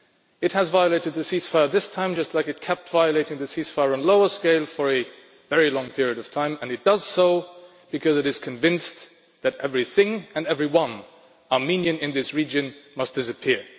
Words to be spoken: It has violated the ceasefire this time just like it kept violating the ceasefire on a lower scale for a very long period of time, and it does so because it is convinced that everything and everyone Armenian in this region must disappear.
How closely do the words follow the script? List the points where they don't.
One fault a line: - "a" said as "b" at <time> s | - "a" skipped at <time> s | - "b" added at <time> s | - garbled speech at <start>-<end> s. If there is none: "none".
none